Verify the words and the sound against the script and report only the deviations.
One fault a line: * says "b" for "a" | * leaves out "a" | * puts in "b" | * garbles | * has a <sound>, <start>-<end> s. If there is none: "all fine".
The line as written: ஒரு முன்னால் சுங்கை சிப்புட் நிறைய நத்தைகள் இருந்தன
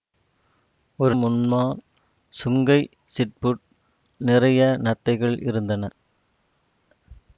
all fine